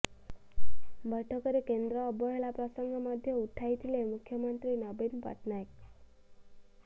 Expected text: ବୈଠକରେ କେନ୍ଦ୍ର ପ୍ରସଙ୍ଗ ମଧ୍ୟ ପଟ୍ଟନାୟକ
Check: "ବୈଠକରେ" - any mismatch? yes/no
no